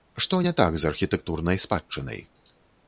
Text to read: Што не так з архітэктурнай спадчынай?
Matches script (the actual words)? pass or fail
pass